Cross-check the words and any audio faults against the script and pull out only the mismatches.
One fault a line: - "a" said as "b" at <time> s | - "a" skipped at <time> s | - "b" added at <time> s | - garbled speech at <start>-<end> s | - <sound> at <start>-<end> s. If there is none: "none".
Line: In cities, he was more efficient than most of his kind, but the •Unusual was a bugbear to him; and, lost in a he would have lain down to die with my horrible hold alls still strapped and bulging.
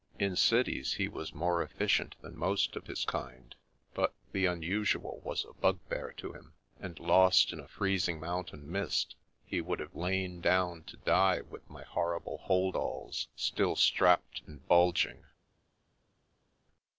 - "freezing mountain mist" added at 7.7 s